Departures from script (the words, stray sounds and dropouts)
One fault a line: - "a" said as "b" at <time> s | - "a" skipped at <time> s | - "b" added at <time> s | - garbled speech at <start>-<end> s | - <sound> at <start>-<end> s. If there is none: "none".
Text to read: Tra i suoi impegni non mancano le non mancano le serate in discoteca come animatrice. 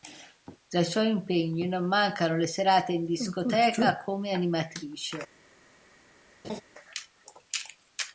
- "non mancano le" skipped at 2.5 s
- laugh at 6.4-6.6 s